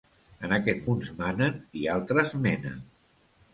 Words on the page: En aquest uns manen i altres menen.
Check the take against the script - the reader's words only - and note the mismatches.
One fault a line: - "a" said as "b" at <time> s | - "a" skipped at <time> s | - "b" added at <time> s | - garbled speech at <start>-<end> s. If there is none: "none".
none